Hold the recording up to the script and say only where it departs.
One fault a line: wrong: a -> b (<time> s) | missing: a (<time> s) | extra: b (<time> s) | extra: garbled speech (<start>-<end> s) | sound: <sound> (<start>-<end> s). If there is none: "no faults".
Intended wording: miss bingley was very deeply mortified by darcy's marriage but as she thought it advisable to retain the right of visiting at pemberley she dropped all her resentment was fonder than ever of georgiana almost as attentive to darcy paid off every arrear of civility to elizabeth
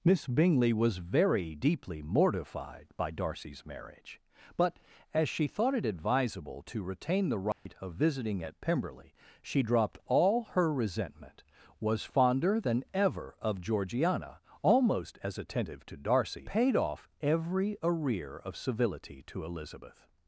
sound: dropout (7.5-7.7 s)